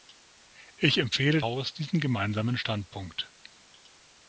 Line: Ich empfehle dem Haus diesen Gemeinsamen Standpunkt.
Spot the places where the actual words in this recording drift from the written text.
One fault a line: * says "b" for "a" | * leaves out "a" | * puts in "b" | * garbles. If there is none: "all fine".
* leaves out "dem"